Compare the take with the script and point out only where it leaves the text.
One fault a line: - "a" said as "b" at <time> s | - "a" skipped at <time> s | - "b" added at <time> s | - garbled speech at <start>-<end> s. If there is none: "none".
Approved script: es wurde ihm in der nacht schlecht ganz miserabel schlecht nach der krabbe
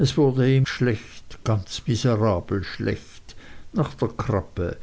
- "in der nacht" skipped at 0.7 s